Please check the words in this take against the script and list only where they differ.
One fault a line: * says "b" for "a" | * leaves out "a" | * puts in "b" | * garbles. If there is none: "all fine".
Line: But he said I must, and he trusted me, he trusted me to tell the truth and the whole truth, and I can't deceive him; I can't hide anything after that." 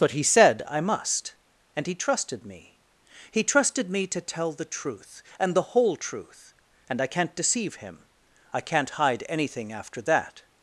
all fine